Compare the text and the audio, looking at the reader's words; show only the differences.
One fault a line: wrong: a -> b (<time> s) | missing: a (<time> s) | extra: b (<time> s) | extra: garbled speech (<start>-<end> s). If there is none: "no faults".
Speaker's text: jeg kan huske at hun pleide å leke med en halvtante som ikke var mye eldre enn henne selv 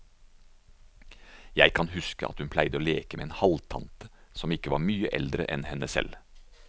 no faults